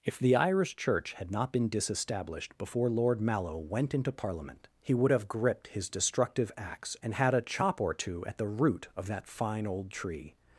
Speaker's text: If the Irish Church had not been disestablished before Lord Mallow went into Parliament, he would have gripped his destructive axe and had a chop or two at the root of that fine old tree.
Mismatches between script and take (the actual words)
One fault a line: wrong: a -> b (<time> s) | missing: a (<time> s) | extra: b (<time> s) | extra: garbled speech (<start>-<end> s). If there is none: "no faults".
no faults